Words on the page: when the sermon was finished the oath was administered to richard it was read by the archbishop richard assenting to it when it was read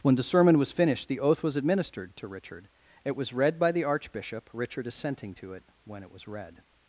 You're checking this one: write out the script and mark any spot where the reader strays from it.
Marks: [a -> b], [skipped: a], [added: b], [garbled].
when the sermon was finished the oath was administered to richard it was read by the archbishop richard assenting to it when it was read